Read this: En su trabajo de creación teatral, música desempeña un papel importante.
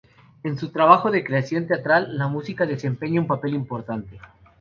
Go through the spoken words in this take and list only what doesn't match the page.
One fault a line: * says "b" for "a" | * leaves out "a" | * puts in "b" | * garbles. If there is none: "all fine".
* puts in "la"